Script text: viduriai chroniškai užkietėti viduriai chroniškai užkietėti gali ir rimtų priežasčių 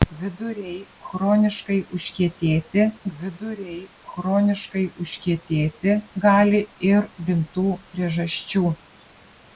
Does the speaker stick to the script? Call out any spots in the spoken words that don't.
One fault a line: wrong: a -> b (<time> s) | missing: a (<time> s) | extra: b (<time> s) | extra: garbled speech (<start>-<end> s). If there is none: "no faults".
no faults